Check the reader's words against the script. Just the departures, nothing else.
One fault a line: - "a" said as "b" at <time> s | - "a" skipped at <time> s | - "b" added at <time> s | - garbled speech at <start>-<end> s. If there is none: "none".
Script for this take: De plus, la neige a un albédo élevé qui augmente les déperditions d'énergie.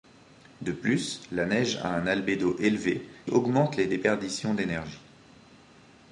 - "qui" skipped at 3.0 s